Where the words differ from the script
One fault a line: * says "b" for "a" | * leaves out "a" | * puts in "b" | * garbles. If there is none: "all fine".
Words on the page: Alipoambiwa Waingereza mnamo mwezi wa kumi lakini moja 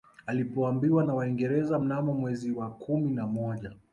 * puts in "na"
* says "na" for "lakini"